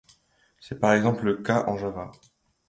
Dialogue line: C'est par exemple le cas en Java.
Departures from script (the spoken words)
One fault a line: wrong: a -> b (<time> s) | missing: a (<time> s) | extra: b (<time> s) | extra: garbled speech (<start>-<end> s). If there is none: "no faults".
no faults